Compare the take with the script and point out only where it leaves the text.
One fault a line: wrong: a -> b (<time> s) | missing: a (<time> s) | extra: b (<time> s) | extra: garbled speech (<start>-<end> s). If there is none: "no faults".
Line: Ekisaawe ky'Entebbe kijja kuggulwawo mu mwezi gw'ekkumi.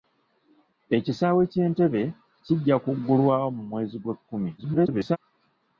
extra: garbled speech (4.6-5.2 s)